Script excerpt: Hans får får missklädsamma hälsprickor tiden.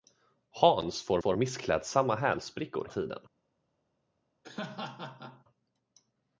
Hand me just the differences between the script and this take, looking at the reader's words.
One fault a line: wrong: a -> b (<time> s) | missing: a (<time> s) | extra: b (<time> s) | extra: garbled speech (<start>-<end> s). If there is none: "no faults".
no faults